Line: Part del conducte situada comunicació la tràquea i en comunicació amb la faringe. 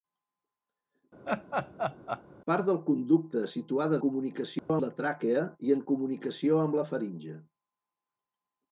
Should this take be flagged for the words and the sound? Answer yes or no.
yes